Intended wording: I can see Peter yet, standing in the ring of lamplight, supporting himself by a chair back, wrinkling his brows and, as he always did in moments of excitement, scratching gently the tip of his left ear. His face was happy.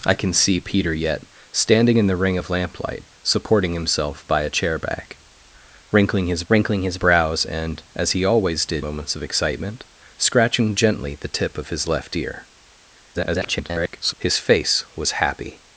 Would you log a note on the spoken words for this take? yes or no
yes